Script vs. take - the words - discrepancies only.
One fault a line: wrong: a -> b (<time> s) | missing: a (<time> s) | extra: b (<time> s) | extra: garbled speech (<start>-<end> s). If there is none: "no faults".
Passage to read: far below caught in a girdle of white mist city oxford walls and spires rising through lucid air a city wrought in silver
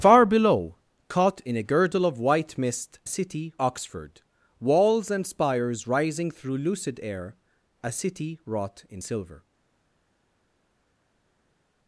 no faults